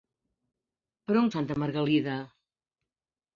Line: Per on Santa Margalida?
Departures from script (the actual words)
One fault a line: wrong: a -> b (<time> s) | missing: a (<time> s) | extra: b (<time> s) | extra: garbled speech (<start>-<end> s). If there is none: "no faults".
no faults